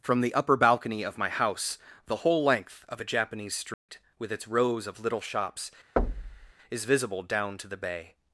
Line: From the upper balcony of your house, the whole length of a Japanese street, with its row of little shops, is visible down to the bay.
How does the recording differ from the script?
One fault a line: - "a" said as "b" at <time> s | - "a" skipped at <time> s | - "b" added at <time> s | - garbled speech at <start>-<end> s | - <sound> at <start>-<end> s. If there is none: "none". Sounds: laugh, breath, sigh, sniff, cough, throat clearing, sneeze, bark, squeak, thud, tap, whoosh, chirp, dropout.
- "your" said as "my" at 1.2 s
- dropout at 3.7-3.9 s
- "row" said as "rows" at 4.5 s
- thud at 6.0-6.5 s